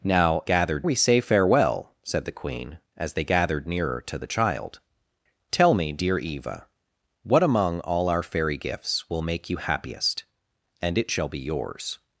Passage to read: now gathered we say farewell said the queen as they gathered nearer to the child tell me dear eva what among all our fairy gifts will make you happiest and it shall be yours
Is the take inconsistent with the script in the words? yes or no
no